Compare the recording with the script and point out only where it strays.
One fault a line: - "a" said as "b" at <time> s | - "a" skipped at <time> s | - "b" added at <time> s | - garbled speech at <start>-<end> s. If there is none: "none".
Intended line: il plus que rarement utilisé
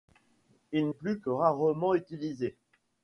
none